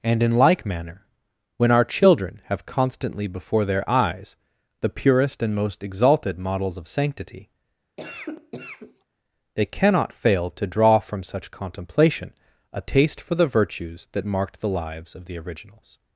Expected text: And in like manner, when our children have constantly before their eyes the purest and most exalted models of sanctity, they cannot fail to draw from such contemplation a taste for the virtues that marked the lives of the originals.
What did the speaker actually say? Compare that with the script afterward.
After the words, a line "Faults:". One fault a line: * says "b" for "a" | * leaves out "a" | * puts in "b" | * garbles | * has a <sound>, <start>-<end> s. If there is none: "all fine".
And in like manner, when our children have constantly before their eyes the purest and most exalted models of sanctity, they cannot fail to draw from such contemplation a taste for the virtues that marked the lives of the originals.
Faults:
* has a cough, 8.0-9.0 s